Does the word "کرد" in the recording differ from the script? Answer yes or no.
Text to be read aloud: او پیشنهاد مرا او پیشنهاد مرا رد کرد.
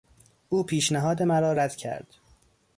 no